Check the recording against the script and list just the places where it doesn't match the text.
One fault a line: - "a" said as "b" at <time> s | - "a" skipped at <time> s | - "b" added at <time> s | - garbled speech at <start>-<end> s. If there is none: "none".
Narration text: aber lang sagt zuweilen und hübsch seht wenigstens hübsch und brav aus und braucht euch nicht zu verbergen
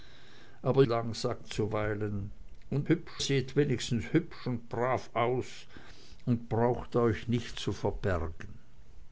none